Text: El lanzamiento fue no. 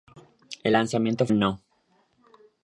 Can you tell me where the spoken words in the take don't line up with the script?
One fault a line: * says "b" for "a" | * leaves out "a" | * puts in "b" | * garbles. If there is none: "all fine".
* leaves out "fue"